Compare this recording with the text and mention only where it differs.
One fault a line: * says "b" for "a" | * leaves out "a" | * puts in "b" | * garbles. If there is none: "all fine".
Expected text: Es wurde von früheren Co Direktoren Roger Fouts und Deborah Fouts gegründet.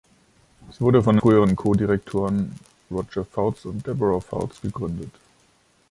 all fine